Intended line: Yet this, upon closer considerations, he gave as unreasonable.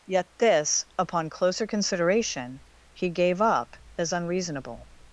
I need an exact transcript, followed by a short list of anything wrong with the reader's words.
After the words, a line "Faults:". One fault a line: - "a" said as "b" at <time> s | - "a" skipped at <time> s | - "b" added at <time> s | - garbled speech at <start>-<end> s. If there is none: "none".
Yet this, upon closer consideration, he gave up as unreasonable.
Faults:
- "considerations" said as "consideration" at 1.7 s
- "up" added at 3.4 s